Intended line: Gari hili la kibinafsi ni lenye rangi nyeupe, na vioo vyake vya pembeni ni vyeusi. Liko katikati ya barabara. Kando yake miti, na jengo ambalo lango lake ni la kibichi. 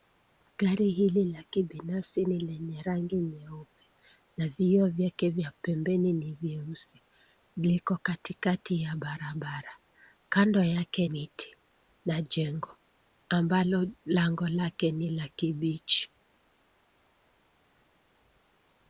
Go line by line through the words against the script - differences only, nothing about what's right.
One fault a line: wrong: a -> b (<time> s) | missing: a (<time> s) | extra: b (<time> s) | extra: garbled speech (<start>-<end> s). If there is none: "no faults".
no faults